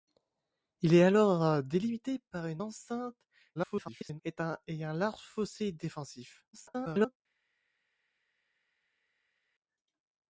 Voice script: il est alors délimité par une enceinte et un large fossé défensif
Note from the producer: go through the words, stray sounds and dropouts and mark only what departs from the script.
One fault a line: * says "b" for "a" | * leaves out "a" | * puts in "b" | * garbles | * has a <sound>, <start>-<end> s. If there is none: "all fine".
* garbles
* garbles